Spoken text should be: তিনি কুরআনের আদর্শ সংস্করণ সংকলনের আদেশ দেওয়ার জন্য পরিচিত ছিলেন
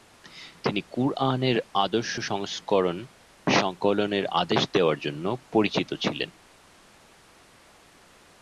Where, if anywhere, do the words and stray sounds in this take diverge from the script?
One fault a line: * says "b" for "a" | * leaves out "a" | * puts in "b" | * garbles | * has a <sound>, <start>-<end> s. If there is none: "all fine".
all fine